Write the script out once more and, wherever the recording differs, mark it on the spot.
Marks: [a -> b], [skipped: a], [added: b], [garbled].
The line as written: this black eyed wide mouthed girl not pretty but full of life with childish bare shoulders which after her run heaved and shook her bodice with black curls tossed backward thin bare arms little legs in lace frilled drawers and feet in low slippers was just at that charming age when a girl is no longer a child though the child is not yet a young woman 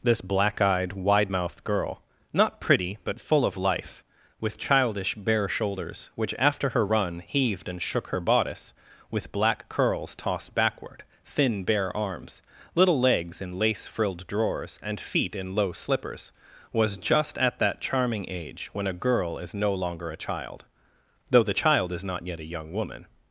this black eyed wide mouthed girl not pretty but full of life with childish bare shoulders which after her run heaved and shook her bodice with black curls tossed backward thin bare arms little legs in lace frilled drawers and feet in low slippers was just at that charming age when a girl is no longer a child though the child is not yet a young woman